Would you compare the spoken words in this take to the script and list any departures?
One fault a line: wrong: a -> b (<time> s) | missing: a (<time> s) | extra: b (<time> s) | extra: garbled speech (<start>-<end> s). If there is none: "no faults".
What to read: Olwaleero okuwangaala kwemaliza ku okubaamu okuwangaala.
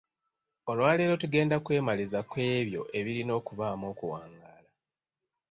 wrong: okuwangaala -> tugenda (1.2 s)
extra: ebyo ebirina (2.6 s)